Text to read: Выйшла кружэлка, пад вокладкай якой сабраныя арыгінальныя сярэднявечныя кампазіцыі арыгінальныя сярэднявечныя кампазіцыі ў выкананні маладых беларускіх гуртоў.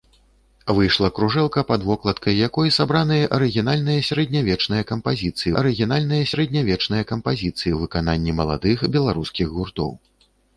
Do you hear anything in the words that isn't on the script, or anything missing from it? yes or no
no